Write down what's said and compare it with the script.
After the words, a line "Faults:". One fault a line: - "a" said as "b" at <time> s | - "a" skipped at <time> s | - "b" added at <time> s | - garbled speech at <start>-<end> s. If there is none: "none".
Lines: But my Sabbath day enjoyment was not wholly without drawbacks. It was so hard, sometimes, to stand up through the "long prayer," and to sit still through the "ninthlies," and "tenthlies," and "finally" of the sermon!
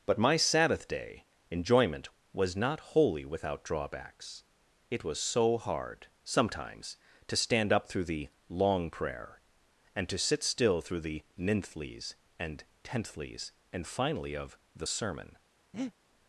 But my Sabbath day enjoyment was not wholly without drawbacks. It was so hard, sometimes, to stand up through the "long prayer," and to sit still through the "ninthlies," and "tenthlies," and "finally" of the sermon!
Faults:
none